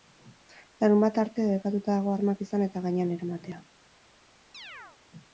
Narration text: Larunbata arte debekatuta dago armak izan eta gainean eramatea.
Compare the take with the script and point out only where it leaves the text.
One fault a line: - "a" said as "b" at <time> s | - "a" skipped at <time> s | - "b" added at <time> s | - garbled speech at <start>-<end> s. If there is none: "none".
none